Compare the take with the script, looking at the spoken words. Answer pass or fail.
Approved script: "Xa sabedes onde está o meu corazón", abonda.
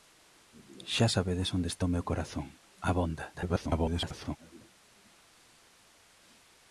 fail